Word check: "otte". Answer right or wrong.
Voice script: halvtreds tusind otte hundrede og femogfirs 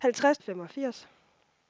wrong